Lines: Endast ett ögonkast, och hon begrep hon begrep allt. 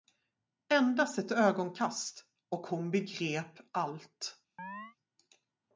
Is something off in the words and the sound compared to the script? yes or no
yes